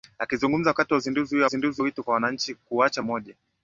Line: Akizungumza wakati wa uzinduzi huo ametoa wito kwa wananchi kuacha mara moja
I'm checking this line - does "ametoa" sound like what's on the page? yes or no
no